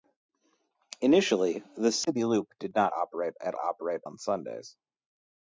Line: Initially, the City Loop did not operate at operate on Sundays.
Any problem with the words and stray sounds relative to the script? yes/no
no